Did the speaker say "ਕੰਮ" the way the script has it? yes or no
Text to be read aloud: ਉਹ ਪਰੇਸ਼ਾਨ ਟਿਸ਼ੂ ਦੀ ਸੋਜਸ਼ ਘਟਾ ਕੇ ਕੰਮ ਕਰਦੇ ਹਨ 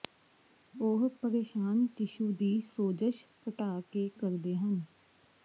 no